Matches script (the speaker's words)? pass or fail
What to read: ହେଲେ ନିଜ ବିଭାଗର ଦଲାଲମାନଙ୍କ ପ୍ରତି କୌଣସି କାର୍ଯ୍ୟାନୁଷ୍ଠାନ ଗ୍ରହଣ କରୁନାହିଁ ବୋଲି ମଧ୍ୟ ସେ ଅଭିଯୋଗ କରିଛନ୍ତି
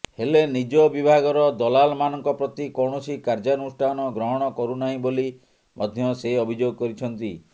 pass